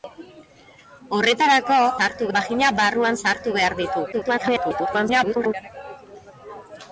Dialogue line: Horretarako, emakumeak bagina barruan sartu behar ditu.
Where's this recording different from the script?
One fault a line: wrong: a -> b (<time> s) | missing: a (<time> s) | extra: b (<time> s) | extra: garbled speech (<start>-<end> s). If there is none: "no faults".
wrong: emakumeak -> sartu (2.0 s)
extra: garbled speech (4.1-5.5 s)